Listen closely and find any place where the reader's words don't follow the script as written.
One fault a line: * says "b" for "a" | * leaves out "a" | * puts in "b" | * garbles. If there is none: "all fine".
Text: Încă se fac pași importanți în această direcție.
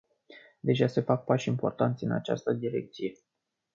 * says "Deja" for "Încă"